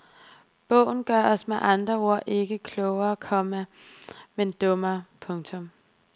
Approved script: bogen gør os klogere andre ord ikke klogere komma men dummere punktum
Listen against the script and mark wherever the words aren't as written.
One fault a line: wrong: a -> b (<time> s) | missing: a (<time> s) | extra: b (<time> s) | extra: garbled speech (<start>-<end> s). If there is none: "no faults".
wrong: klogere -> med (1.5 s)